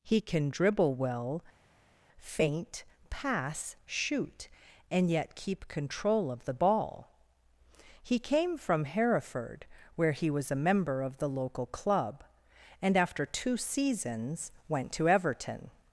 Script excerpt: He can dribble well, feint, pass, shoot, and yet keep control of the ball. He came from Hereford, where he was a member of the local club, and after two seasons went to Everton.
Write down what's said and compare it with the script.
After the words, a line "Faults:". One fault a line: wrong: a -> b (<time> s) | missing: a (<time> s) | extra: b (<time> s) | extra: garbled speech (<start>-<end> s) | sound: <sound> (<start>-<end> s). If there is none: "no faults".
He can dribble well, feint, pass, shoot, and yet keep control of the ball. He came from Hereford, where he was a member of the local club, and after two seasons went to Everton.
Faults:
no faults